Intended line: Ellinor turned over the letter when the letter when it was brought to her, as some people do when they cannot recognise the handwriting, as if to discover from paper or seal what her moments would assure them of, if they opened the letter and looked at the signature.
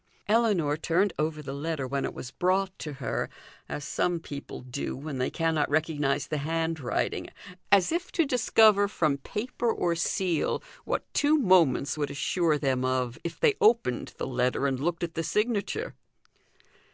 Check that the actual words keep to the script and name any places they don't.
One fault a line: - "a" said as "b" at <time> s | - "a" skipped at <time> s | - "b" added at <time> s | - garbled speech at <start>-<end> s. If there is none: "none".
- "the letter when" skipped at 2.0 s
- "her" said as "two" at 11.1 s